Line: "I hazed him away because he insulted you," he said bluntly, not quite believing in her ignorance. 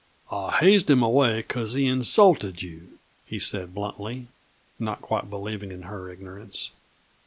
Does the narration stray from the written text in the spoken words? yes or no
no